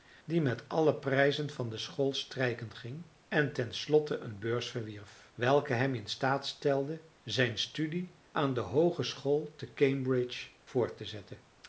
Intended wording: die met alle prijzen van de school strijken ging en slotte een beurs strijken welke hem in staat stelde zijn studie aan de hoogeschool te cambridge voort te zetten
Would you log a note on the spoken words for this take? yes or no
yes